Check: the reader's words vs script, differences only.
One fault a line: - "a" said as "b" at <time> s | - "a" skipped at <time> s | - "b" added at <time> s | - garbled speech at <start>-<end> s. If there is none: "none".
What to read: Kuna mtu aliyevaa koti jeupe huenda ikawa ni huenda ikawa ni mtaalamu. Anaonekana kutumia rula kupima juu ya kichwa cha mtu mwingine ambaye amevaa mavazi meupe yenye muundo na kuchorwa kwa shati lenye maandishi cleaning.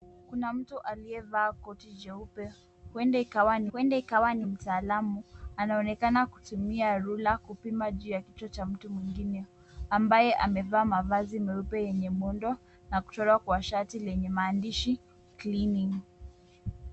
none